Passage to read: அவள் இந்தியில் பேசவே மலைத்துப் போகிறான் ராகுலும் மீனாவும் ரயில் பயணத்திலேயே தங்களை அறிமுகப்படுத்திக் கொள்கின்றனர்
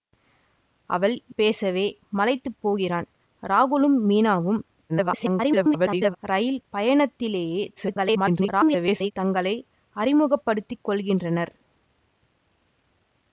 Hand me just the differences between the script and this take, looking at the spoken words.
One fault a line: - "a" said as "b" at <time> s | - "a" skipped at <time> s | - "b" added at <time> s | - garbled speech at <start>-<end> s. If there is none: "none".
- "இந்தியில்" skipped at 1.1 s
- garbled speech at 4.9-6.2 s
- garbled speech at 7.8-9.1 s